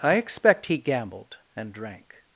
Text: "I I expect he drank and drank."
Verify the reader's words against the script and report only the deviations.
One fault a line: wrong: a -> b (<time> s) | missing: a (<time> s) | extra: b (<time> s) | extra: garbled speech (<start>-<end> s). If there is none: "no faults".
missing: I (0.1 s)
wrong: drank -> gambled (0.8 s)